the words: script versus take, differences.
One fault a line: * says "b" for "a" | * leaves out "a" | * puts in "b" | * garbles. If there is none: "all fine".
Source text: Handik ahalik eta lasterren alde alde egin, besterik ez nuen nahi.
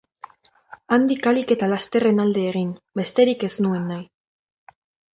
* leaves out "alde"